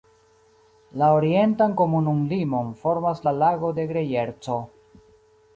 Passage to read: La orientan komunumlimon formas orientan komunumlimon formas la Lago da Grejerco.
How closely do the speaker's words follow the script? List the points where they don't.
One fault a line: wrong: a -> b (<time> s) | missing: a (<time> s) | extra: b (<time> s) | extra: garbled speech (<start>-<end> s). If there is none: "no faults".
missing: orientan komunumlimon formas (3.3 s)
wrong: da -> de (3.8 s)